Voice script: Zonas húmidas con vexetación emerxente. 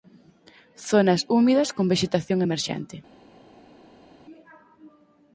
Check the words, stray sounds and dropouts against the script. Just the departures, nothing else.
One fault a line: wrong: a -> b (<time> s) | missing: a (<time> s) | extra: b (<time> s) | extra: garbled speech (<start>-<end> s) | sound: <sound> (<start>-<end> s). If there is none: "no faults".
no faults